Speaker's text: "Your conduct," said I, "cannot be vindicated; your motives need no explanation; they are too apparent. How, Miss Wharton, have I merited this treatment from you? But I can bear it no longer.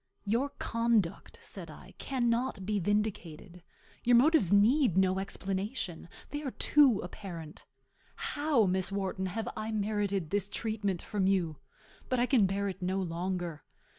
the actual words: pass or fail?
pass